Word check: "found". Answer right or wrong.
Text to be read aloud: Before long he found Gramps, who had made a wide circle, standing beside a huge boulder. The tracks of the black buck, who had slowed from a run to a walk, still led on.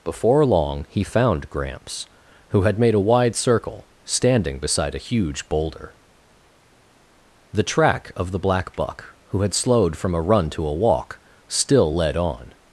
right